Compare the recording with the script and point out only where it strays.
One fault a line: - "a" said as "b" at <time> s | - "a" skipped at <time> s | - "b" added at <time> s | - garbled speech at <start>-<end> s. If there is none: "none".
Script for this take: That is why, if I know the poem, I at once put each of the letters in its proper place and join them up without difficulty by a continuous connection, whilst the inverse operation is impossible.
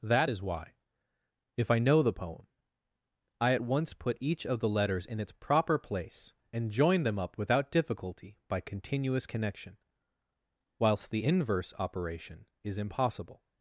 - "a" skipped at 8.6 s